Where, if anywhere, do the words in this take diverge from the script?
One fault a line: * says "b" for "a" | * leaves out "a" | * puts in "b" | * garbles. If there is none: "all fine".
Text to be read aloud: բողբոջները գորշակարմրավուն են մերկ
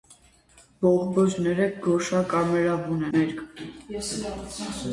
* leaves out "են"